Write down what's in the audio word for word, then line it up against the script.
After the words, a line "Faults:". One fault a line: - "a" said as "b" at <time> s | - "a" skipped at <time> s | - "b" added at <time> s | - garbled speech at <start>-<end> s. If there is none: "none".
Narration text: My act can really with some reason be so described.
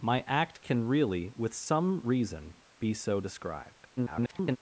My act can really with some reason be so described. [garbled]
Faults:
- garbled speech at 4.0-4.6 s